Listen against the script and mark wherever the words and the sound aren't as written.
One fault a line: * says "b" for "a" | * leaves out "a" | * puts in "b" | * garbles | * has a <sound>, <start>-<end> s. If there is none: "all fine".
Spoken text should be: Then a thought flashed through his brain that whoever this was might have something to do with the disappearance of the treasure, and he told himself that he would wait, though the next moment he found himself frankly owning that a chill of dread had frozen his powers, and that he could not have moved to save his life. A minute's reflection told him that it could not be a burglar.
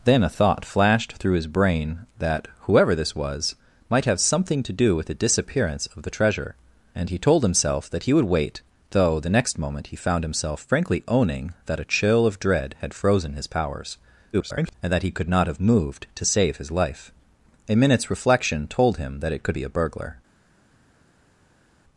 * garbles
* leaves out "not"